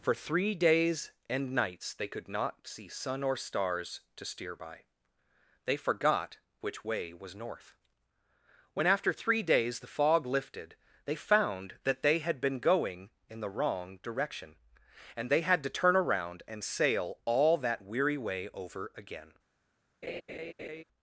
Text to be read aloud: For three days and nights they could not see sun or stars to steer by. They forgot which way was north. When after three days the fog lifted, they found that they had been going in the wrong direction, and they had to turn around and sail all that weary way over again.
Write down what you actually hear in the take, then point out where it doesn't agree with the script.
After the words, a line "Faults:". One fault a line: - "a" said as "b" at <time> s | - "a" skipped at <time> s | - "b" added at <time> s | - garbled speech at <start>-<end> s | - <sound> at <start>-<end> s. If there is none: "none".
For three days and nights they could not see sun or stars to steer by. They forgot which way was north. When after three days the fog lifted, they found that they had been going in the wrong direction, and they had to turn around and sail all that weary way over again.
Faults:
- laugh at 20.0-20.8 s